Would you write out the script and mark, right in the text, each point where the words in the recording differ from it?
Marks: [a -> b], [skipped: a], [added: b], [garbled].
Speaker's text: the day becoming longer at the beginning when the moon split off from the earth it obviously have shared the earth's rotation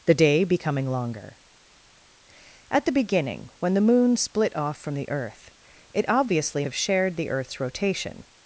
the day becoming longer at the beginning when the moon split off from the earth it obviously have shared the earth's rotation